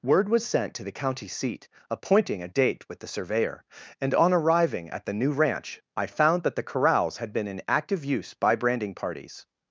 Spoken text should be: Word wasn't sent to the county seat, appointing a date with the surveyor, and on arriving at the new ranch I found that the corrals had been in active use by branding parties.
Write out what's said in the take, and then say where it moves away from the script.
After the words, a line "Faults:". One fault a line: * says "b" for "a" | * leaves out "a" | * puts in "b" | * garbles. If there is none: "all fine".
Word was sent to the county seat, appointing a date with the surveyor, and on arriving at the new ranch I found that the corrals had been in active use by branding parties.
Faults:
* says "was" for "wasn't"